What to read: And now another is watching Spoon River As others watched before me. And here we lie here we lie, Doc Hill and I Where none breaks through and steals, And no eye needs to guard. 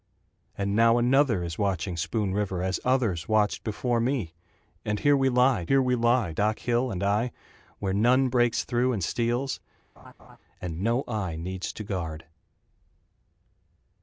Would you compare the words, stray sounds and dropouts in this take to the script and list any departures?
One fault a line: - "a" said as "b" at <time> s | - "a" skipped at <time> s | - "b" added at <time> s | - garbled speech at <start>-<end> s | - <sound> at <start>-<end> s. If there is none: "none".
- laugh at 10.0-10.4 s